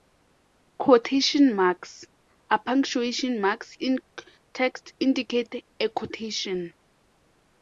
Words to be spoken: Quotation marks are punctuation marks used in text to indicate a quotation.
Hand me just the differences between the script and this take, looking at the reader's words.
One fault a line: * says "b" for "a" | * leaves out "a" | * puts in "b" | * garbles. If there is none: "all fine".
* leaves out "used"
* leaves out "to"